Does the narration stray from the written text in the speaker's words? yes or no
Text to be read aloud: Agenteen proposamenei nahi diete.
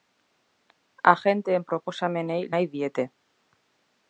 no